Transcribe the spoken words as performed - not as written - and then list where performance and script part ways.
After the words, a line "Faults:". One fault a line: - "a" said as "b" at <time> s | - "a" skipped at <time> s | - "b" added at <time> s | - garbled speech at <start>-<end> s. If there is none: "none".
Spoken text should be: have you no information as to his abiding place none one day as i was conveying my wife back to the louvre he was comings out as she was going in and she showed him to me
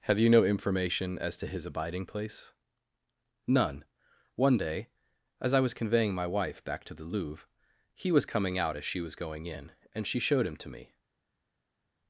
have you no information as to his abiding place none one day as i was conveying my wife back to the louvre he was coming out as she was going in and she showed him to me
Faults:
- "comings" said as "coming" at 8.2 s